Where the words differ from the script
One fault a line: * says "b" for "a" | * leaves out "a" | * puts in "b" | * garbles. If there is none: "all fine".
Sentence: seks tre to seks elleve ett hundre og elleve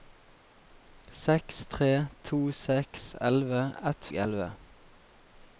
* leaves out "hundre"